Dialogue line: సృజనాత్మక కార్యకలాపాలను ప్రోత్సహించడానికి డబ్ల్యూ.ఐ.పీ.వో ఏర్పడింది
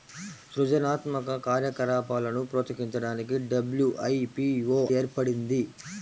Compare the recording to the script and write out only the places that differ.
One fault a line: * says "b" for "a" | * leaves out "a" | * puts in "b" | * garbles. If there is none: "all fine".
all fine